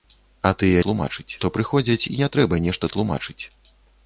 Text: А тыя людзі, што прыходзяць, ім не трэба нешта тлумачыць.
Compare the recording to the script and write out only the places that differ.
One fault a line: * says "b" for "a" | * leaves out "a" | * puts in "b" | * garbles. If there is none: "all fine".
* says "тлумачыць" for "людзі"
* leaves out "ім"